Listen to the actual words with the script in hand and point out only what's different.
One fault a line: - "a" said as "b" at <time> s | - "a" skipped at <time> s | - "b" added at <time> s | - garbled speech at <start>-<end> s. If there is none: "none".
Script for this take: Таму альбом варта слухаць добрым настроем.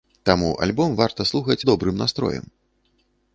none